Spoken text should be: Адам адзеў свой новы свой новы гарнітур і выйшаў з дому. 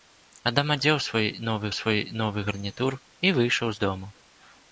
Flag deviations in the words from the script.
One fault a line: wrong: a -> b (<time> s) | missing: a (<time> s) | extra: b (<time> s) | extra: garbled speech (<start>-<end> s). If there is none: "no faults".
no faults